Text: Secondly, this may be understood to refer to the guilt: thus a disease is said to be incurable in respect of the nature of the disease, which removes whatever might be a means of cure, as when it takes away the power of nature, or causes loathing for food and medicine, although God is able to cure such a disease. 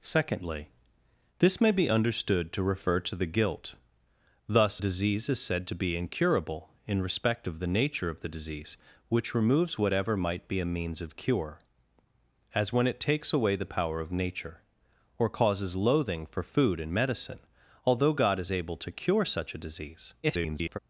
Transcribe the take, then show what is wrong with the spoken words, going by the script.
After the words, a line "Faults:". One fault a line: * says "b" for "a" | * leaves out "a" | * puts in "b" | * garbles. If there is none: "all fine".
Secondly, this may be understood to refer to the guilt: thus disease is said to be incurable in respect of the nature of the disease, which removes whatever might be a means of cure, as when it takes away the power of nature, or causes loathing for food and medicine, although God is able to cure such a disease. [garbled]
Faults:
* leaves out "a"
* garbles